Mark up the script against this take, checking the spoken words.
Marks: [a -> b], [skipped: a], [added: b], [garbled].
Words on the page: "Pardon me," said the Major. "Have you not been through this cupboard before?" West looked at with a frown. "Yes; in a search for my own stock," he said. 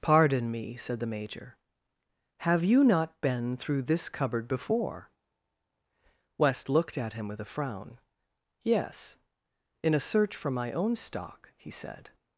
"Pardon me," said the Major. "Have you not been through this cupboard before?" West looked at [added: him] with a frown. "Yes; in a search for my own stock," he said.